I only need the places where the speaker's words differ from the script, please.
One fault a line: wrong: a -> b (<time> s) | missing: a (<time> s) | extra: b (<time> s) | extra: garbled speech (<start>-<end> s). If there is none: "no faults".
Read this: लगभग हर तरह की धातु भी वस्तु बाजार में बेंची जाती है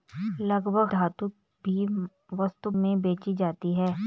missing: हर तरह की (0.9 s)
missing: बाजार (2.7 s)